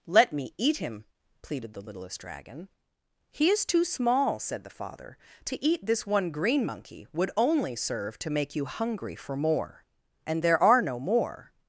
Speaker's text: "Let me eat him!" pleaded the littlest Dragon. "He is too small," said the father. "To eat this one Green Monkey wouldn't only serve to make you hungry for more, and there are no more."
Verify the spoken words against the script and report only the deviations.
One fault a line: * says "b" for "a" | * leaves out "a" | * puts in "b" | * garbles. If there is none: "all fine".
* says "would" for "wouldn't"